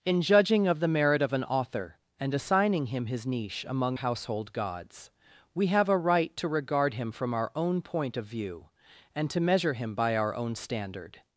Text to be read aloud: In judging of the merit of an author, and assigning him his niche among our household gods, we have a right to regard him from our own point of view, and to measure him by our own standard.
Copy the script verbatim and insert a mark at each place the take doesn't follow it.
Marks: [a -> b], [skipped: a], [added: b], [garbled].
In judging of the merit of an author, and assigning him his niche among [skipped: our] household gods, we have a right to regard him from our own point of view, and to measure him by our own standard.